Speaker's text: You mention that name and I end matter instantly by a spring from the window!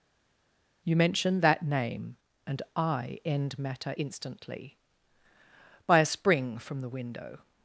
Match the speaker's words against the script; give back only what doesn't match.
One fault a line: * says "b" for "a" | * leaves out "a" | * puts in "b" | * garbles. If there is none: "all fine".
all fine